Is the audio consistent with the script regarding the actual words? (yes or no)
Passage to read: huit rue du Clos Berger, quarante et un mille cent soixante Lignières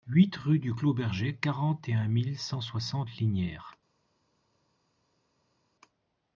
yes